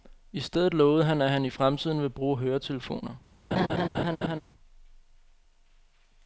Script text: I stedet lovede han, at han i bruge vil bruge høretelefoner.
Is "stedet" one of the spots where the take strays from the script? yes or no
no